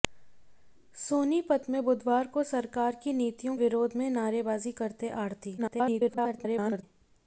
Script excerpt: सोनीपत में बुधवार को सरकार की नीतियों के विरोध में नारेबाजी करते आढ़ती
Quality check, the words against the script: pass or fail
fail